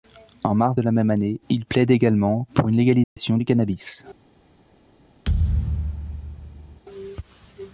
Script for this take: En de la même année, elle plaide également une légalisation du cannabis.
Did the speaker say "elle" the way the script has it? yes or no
no